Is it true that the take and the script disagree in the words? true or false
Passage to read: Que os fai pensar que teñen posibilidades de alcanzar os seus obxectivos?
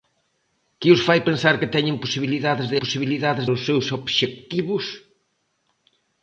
true